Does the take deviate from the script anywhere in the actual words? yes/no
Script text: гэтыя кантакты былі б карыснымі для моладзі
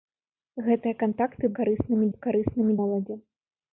yes